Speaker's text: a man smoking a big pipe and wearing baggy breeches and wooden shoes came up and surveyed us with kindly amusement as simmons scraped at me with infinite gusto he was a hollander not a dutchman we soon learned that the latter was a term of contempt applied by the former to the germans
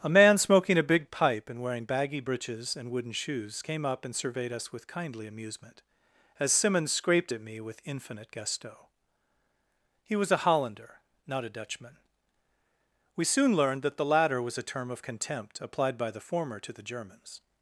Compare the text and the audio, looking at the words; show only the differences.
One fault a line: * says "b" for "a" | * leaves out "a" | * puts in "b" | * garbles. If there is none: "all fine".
all fine